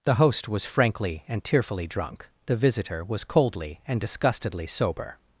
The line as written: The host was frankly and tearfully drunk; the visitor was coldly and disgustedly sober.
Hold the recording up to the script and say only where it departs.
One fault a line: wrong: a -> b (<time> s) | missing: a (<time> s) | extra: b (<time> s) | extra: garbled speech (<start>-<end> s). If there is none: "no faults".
no faults